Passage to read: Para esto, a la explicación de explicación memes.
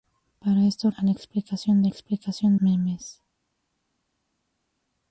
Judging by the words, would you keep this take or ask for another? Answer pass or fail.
pass